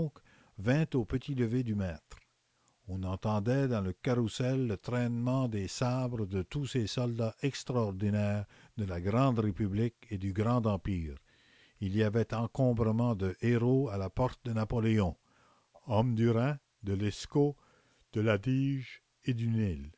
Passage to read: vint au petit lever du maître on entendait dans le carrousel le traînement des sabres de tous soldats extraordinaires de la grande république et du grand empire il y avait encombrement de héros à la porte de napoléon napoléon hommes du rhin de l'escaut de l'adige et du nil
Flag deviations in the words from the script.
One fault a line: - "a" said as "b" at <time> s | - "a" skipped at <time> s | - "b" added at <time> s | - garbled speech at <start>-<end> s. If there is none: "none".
- "ces" added at 6.7 s
- "napoléon" skipped at 15.2 s